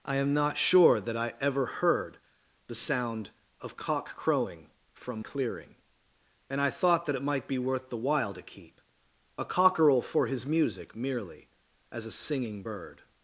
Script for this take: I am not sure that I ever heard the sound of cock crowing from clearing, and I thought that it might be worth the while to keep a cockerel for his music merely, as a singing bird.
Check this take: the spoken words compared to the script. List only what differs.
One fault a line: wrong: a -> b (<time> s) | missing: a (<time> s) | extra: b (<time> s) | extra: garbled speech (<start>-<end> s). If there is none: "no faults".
no faults